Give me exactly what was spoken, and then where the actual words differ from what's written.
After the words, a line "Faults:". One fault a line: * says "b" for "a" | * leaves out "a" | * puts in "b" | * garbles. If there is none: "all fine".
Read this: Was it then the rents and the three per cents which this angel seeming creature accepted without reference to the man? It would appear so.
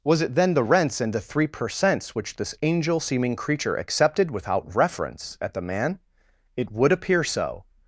Was it then the rents and the three per cents which this angel seeming creature accepted without reference at the man? It would appear so.
Faults:
* says "at" for "to"